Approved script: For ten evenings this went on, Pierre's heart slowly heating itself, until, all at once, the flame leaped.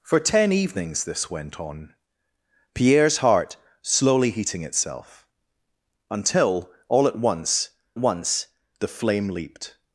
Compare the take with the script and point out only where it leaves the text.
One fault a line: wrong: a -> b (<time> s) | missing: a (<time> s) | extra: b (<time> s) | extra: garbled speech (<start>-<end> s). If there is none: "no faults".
extra: once (8.0 s)